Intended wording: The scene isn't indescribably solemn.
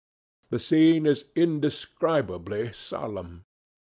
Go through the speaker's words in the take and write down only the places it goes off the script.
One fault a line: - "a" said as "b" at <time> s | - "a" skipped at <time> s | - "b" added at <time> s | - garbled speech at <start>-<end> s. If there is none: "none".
- "isn't" said as "is" at 1.1 s